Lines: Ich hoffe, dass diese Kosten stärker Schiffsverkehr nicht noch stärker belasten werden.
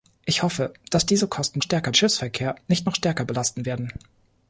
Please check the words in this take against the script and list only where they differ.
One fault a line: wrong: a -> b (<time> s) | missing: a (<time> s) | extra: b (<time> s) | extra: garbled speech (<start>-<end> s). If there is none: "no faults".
no faults